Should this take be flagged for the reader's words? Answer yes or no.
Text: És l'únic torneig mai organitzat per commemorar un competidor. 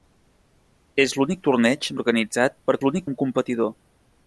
yes